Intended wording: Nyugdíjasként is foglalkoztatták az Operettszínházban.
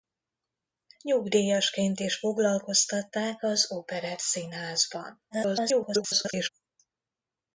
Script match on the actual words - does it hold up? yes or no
no